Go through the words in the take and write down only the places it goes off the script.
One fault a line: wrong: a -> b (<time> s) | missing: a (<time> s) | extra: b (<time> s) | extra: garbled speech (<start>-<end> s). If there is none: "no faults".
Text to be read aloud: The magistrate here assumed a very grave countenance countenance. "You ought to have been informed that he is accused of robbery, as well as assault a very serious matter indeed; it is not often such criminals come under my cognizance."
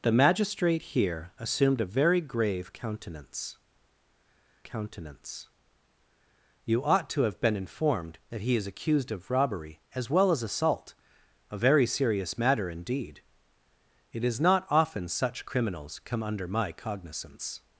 no faults